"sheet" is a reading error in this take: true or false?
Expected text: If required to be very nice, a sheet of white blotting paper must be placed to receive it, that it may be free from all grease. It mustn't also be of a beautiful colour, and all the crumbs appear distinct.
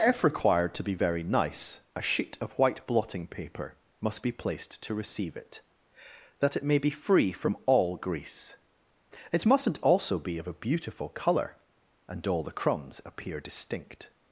false